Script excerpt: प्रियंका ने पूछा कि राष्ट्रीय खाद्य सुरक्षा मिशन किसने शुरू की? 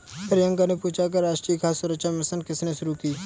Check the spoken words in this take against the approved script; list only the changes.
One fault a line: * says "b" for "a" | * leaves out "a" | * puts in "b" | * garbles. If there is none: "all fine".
all fine